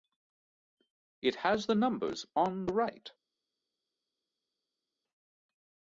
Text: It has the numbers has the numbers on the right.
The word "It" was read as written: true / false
true